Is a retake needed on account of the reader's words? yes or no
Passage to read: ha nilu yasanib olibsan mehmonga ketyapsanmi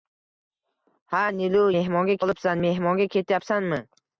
yes